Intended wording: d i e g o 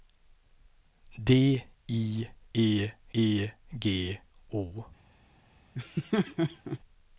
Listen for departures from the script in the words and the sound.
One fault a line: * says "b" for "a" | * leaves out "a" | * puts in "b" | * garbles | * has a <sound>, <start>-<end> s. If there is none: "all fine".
* puts in "e"
* has a laugh, 5.7-6.8 s